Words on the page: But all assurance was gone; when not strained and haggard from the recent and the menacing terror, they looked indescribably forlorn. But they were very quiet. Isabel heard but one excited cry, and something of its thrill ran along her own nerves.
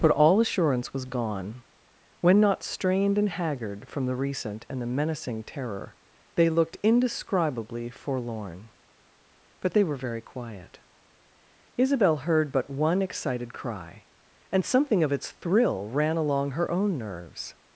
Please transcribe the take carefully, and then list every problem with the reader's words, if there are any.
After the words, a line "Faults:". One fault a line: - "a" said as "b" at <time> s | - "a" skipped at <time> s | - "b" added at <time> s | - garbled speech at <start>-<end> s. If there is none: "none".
But all assurance was gone; when not strained and haggard from the recent and the menacing terror, they looked indescribably forlorn. But they were very quiet. Isabel heard but one excited cry, and something of its thrill ran along her own nerves.
Faults:
none